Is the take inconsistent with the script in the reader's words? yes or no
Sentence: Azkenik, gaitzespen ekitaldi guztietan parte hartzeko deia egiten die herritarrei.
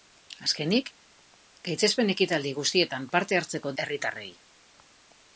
yes